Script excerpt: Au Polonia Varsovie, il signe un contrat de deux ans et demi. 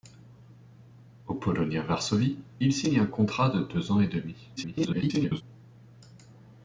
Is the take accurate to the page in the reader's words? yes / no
no